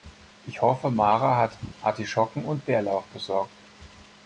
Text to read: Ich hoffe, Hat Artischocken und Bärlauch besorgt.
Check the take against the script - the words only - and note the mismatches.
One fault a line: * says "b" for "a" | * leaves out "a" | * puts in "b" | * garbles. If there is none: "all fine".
* puts in "Mara"